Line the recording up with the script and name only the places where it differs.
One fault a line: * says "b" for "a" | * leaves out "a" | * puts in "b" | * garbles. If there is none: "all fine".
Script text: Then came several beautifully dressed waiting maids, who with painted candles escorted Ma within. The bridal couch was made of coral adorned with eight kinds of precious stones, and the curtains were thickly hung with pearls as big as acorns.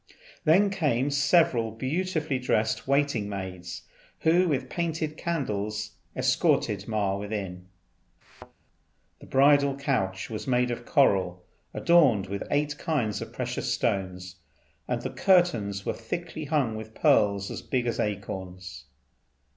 all fine